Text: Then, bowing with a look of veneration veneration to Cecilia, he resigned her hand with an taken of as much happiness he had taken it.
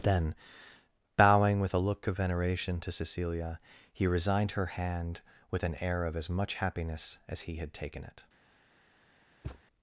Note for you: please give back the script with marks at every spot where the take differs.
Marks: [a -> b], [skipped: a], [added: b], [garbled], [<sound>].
Then, bowing with a look of veneration [skipped: veneration] to Cecilia, he resigned her hand with an [taken -> air] of as much happiness [added: as] he had taken it. [thud]